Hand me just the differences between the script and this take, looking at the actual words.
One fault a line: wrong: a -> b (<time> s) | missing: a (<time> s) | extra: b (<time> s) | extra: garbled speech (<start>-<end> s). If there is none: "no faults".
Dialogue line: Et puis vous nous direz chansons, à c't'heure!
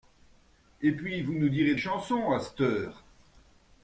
no faults